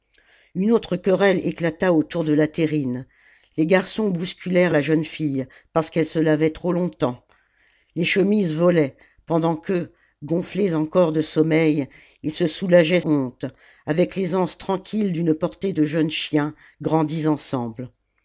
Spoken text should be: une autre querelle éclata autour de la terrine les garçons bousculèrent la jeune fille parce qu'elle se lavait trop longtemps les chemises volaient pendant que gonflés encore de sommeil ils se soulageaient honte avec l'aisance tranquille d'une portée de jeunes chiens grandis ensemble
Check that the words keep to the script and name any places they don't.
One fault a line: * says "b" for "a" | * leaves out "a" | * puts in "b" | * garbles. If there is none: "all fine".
all fine